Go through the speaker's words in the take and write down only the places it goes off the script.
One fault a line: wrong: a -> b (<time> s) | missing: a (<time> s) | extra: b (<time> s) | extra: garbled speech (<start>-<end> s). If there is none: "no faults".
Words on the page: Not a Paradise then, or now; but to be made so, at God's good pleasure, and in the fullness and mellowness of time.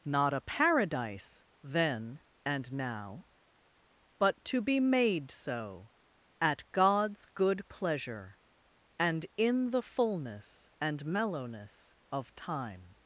wrong: or -> and (2.5 s)